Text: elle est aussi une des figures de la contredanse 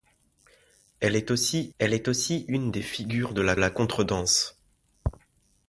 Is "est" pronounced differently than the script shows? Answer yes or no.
no